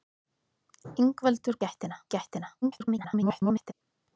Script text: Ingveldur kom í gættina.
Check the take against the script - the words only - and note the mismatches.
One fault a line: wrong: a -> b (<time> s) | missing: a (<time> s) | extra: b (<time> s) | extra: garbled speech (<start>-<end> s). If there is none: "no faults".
wrong: kom -> gættina (1.6 s)
extra: garbled speech (2.6-3.7 s)